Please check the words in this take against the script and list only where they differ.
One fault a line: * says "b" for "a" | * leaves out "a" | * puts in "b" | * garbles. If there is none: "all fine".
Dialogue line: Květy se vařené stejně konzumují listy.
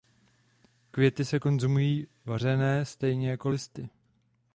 * puts in "konzumují"
* says "jako" for "konzumují"